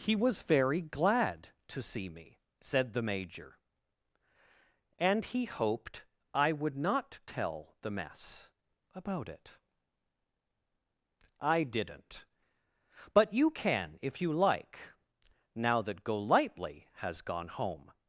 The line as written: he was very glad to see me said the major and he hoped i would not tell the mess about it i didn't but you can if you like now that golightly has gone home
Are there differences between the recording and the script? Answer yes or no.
no